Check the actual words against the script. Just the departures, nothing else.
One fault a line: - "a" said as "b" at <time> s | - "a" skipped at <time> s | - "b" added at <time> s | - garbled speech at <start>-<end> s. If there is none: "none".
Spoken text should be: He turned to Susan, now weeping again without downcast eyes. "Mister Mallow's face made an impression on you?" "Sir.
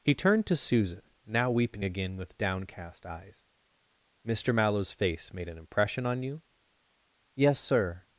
- "without" said as "with" at 2.2 s
- "Yes" added at 7.3 s